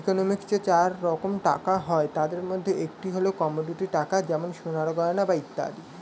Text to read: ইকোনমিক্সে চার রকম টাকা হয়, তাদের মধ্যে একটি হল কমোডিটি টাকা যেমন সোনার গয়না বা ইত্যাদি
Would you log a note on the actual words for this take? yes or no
no